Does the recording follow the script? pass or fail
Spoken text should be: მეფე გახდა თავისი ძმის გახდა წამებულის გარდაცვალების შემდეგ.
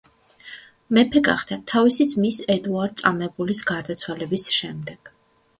fail